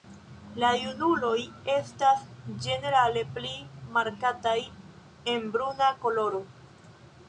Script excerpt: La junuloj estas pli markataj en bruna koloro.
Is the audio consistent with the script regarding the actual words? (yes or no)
no